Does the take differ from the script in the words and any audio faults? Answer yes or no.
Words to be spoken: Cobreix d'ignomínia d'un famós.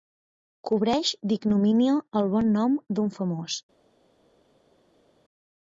yes